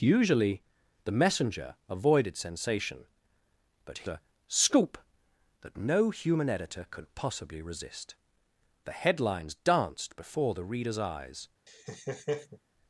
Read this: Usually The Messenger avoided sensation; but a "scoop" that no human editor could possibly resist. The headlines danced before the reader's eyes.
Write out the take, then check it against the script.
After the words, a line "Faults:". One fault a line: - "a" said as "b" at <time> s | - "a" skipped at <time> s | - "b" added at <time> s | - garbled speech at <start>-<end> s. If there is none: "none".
Usually The Messenger avoided sensation; but a "scoop" that no human editor could possibly resist. The headlines danced before the reader's eyes.
Faults:
none